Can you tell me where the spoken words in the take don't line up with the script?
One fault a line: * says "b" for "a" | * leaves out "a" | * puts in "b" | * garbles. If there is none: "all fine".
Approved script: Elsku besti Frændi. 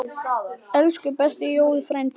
* puts in "Jói"